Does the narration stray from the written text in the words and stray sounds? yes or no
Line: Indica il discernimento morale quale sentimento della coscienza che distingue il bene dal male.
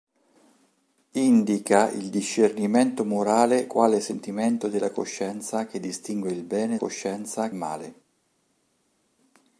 yes